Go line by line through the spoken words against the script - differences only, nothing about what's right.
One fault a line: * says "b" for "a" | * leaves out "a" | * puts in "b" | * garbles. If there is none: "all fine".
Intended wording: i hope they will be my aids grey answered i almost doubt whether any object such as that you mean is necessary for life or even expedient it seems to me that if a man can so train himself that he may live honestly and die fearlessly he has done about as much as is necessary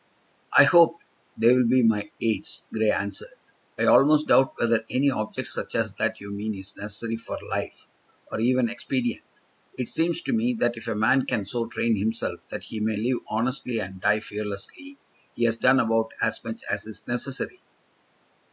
all fine